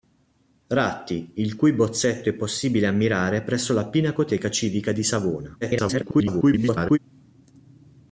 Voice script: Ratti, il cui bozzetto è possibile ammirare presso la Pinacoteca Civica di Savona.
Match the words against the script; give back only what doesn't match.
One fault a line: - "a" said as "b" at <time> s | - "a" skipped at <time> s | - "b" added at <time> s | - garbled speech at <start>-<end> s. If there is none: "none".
- garbled speech at 5.6-7.0 s